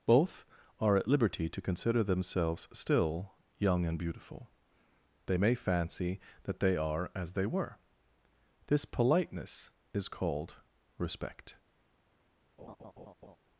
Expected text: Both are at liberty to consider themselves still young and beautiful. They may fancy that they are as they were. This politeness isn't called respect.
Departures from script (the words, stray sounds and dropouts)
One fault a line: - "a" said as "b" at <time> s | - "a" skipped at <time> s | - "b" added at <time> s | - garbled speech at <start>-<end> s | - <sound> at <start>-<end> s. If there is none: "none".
- "isn't" said as "is" at 9.9 s
- laugh at 12.6-13.4 s